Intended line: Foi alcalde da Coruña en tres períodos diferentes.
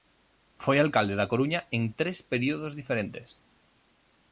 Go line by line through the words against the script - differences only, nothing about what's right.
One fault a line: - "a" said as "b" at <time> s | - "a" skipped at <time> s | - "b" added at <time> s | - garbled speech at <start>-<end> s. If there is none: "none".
none